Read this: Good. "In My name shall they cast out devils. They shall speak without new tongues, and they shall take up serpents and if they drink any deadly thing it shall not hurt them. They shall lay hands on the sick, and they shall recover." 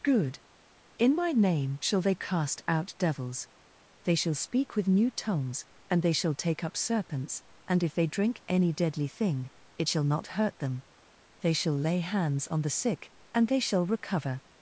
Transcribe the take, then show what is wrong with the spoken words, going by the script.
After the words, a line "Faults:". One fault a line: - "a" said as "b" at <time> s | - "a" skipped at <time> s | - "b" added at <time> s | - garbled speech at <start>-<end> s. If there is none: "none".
Good. "In My name shall they cast out devils. They shall speak with new tongues, and they shall take up serpents and if they drink any deadly thing it shall not hurt them. They shall lay hands on the sick, and they shall recover."
Faults:
- "without" said as "with" at 4.8 s